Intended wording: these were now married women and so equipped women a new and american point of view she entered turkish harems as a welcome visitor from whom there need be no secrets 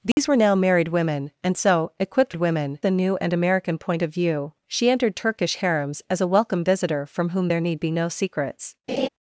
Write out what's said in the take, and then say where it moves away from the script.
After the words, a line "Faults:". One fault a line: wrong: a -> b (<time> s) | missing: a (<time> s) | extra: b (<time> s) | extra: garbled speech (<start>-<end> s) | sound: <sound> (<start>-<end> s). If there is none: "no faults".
these were now married women and so equipped women a new and american point of view she entered turkish harems as a welcome visitor from whom there need be no secrets
Faults:
sound: dropout (0.1-0.2 s)
sound: laugh (8.9-9.1 s)